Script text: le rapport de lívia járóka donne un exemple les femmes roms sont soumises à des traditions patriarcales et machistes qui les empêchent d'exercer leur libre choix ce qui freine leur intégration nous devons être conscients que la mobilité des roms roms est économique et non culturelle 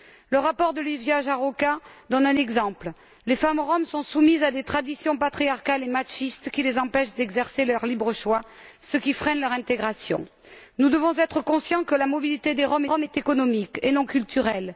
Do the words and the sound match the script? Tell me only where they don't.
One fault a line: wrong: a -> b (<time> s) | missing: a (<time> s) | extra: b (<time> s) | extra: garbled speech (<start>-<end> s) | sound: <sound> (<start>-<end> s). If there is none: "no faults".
no faults